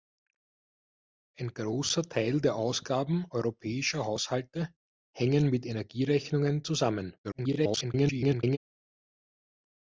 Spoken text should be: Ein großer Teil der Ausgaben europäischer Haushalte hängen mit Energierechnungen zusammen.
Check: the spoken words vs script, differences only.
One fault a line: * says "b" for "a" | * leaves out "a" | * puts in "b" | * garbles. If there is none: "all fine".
* garbles